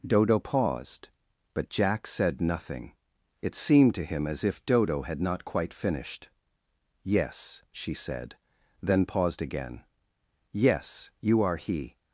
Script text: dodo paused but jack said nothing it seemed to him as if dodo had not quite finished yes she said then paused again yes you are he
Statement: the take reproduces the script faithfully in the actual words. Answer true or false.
true